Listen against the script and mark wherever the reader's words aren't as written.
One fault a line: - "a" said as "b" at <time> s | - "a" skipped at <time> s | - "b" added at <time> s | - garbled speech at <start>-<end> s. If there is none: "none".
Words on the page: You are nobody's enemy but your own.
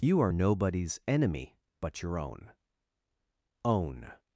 - "own" added at 3.6 s